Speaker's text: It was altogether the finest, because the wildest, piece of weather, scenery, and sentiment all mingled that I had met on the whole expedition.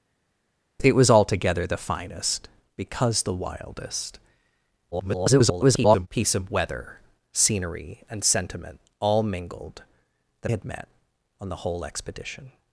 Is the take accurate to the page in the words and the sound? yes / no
no